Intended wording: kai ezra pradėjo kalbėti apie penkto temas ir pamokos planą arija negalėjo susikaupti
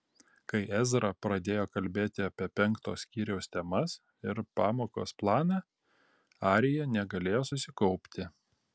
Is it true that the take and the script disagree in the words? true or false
true